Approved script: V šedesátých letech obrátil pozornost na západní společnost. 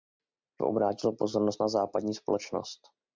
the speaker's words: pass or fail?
fail